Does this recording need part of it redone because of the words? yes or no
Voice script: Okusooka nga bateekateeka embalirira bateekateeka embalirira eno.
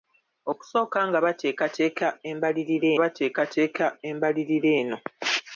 no